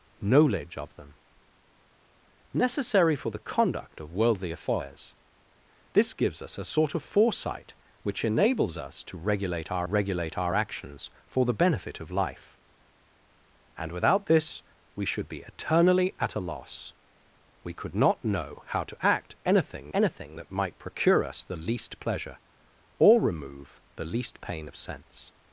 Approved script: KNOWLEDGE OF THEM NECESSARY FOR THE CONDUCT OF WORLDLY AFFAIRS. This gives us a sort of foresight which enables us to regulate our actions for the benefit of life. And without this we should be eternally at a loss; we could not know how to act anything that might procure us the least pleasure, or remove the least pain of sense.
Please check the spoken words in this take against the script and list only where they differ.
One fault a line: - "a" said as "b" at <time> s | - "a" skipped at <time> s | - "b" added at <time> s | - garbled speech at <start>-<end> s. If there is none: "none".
- "regulate our" added at 9.8 s
- "anything" added at 19.9 s